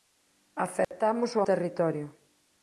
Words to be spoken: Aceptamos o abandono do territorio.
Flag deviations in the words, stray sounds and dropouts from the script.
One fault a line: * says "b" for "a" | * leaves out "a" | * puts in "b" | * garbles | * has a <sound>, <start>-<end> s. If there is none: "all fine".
* has a dropout, 0.8-0.9 s
* leaves out "abandono do"